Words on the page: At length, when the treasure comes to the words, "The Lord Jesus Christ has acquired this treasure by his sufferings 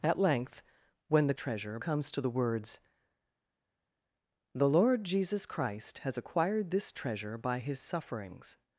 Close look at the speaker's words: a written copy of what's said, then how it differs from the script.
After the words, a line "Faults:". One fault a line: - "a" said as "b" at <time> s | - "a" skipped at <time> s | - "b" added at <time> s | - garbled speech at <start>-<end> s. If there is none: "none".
At length, when the treasure comes to the words, "The Lord Jesus Christ has acquired this treasure by his sufferings
Faults:
none